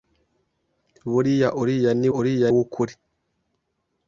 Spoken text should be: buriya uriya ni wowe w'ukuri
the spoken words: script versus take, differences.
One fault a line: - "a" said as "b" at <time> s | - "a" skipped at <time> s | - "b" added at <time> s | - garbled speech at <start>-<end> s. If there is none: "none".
- "wowe" said as "uriya" at 2.2 s